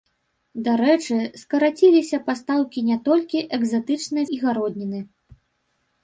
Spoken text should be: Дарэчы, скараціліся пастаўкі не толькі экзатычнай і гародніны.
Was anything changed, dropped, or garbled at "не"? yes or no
no